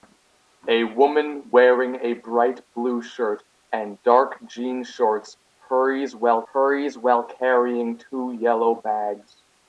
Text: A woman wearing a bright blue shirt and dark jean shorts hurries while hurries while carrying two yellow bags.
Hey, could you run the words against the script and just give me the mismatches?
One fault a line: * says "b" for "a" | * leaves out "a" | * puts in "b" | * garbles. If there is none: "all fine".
all fine